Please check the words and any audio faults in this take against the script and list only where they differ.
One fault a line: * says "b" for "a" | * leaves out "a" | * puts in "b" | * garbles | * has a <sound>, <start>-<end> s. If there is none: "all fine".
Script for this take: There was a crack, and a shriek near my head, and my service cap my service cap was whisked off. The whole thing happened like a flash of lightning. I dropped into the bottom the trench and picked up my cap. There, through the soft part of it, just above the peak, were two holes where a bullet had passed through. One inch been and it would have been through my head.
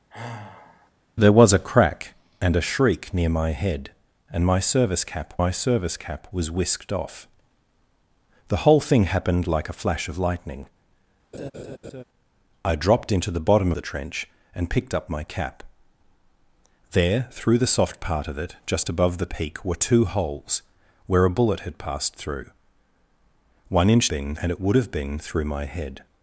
* has a sigh, 0.1-0.9 s
* has a laugh, 11.3-12.0 s